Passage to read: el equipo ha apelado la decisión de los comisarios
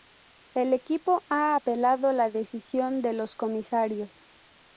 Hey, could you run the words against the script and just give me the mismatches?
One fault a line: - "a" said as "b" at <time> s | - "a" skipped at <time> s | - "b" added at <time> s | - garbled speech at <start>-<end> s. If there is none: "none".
none